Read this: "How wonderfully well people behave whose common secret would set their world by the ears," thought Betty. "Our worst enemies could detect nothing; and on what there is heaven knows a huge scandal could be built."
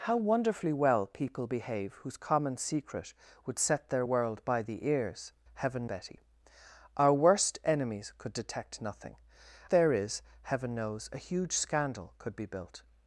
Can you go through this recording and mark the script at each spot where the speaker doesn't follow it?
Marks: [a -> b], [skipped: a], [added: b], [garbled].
"How wonderfully well people behave whose common secret would set their world by the ears," [thought -> heaven] Betty. "Our worst enemies could detect nothing; [skipped: and on what] there is heaven knows a huge scandal could be built."